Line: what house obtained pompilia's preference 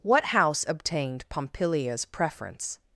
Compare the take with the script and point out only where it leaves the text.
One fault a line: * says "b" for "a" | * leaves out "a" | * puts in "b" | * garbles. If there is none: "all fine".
all fine